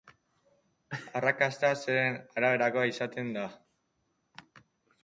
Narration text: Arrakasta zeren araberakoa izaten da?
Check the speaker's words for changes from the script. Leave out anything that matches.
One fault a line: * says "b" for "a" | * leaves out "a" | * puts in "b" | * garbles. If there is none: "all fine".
all fine